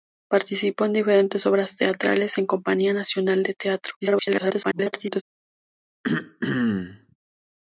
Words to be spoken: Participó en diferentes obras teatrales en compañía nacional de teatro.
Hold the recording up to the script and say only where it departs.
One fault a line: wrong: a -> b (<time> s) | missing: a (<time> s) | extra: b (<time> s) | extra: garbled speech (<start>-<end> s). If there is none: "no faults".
extra: garbled speech (4.0-5.2 s)